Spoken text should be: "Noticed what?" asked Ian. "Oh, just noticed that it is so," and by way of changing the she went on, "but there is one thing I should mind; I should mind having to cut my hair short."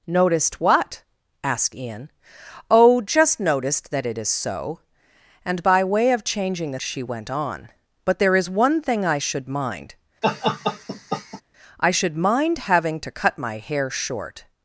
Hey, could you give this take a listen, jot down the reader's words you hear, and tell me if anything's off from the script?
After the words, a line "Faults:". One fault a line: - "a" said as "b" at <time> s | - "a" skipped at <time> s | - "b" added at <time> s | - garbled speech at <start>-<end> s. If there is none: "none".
"Noticed what?" asked Ian. "Oh, just noticed that it is so," and by way of changing the she went on, "but there is one thing I should mind; I should mind having to cut my hair short."
Faults:
none